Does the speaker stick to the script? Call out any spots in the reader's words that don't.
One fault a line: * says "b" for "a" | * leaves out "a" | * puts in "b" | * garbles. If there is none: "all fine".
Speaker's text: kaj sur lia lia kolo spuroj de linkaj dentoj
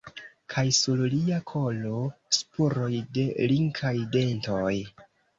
* leaves out "lia"